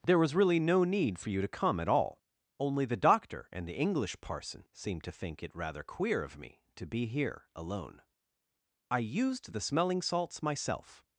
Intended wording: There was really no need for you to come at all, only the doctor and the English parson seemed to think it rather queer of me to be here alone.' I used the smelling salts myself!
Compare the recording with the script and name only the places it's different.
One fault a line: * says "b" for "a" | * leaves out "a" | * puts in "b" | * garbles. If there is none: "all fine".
all fine